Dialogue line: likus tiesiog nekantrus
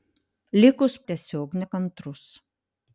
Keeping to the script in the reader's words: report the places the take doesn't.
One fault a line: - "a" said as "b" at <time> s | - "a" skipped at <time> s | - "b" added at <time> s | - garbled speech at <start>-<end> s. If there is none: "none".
none